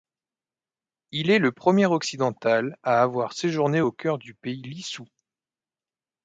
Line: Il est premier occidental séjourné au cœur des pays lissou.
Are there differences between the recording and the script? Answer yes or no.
yes